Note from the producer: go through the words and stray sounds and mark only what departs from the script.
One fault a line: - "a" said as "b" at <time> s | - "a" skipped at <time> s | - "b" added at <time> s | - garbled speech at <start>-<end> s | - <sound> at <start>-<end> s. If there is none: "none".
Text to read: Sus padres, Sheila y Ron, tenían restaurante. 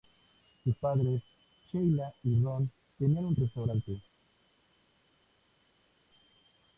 - "un" added at 3.3 s